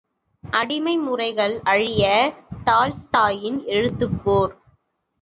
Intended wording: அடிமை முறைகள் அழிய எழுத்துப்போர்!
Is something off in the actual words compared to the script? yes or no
yes